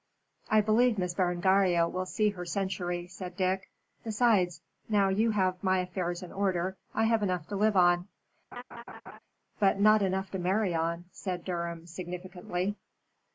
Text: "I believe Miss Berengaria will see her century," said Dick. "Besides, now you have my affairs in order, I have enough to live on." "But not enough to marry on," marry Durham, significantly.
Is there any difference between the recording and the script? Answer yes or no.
yes